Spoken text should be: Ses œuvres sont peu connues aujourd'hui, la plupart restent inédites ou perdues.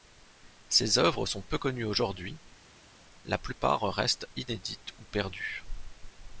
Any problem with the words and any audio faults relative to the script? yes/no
no